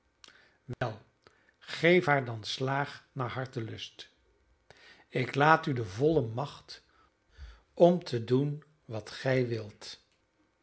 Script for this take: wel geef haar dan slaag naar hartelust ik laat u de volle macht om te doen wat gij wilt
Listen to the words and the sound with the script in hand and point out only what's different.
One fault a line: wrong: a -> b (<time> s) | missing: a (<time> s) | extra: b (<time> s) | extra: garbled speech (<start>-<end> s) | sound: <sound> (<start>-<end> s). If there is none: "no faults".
sound: dropout (0.7-0.8 s)